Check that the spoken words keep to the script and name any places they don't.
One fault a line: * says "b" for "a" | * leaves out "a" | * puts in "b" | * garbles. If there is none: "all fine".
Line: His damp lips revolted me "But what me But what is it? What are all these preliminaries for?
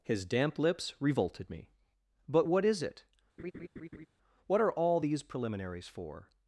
* leaves out "me But what"